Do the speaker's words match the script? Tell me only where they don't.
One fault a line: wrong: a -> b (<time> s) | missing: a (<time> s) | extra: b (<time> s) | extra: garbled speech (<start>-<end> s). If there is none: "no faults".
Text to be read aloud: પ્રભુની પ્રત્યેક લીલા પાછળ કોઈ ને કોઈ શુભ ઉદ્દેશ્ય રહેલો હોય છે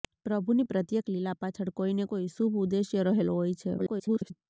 extra: garbled speech (3.8-4.3 s)